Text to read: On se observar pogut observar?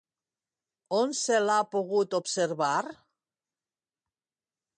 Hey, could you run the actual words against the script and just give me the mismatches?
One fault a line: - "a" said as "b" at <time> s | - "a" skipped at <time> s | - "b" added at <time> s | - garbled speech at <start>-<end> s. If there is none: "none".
- "observar" said as "l'ha" at 1.4 s